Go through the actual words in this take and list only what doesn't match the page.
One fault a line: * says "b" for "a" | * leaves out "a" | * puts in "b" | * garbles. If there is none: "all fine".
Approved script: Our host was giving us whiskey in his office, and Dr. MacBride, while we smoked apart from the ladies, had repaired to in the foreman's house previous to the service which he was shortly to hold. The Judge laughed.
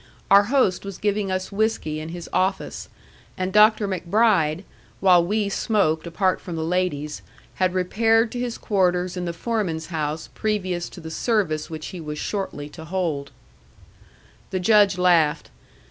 * puts in "his quarters"